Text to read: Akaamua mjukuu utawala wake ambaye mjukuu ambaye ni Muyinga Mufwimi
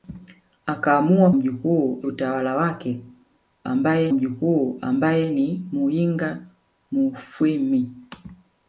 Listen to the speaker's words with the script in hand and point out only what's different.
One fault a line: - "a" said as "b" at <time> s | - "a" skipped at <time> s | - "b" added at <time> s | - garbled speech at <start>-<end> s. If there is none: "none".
none